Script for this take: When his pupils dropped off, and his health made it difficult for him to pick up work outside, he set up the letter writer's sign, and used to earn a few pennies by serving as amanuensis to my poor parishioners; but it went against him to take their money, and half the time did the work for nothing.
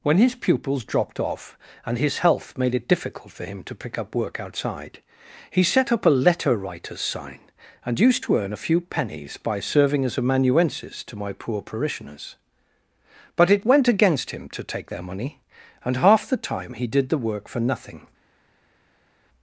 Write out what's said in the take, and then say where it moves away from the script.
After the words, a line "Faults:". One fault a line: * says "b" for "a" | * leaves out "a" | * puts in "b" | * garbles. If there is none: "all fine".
When his pupils dropped off, and his health made it difficult for him to pick up work outside, he set up a letter writer's sign, and used to earn a few pennies by serving as amanuensis to my poor parishioners; but it went against him to take their money, and half the time he did the work for nothing.
Faults:
* says "a" for "the"
* puts in "he"